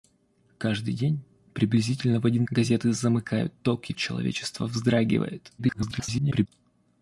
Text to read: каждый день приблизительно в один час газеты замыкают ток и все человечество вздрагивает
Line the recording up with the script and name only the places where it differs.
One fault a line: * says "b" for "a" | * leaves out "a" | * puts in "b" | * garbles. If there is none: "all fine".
* leaves out "час"
* leaves out "все"
* garbles